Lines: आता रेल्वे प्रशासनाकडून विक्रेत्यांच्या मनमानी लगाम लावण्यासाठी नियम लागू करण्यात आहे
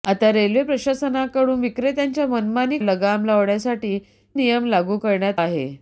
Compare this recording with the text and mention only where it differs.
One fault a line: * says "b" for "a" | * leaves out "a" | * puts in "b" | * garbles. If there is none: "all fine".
all fine